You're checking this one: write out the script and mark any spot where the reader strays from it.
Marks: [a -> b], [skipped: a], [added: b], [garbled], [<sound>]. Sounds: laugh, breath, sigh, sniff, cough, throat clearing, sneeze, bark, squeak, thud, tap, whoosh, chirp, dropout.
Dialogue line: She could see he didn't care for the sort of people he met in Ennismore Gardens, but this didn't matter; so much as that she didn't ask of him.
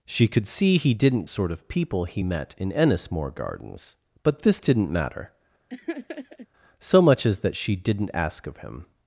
She could see he didn't [skipped: care for the] sort of people he met in Ennismore Gardens, but this didn't matter; [laugh] so much as that she didn't ask of him.